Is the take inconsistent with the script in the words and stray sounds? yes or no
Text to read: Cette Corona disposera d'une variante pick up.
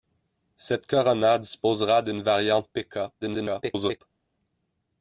yes